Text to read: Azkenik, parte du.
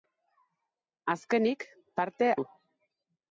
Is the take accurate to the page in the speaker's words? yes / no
yes